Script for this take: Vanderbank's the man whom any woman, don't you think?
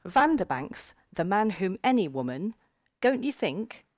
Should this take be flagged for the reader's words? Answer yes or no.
no